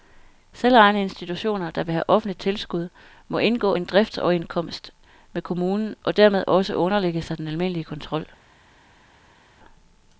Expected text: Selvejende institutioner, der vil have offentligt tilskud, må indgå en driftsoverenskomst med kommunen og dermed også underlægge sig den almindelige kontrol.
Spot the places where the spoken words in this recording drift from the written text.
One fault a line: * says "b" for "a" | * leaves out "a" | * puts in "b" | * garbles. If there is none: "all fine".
all fine